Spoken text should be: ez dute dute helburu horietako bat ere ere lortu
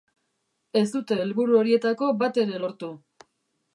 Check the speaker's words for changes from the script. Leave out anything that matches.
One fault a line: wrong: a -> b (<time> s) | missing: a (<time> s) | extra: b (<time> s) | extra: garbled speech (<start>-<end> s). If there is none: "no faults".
missing: dute (1.2 s)
missing: ere (2.6 s)